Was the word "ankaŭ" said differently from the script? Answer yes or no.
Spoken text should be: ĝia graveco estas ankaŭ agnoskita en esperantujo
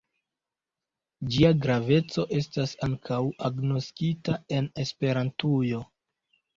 no